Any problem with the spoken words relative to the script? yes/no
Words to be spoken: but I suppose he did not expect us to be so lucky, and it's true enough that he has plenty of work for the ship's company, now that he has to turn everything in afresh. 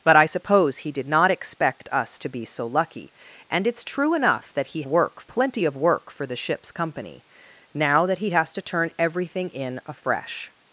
yes